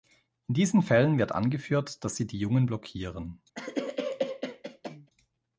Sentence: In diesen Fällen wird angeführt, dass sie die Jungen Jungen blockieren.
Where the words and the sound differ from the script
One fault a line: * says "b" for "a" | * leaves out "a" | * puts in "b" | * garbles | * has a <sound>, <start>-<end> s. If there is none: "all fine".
* leaves out "Jungen"
* has a cough, 3.6-5.1 s